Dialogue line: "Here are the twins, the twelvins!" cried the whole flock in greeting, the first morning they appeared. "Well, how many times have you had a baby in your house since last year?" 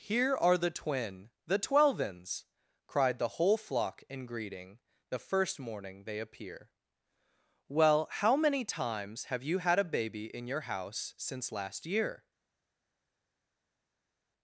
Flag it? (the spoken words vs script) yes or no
yes